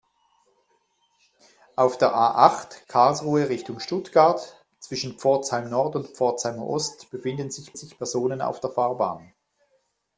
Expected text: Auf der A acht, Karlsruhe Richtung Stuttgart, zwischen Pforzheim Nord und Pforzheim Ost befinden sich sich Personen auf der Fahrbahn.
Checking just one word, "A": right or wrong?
right